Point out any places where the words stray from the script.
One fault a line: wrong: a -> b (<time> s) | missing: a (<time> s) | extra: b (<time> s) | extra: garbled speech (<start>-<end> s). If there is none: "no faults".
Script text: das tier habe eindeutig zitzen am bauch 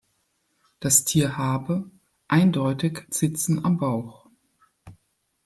no faults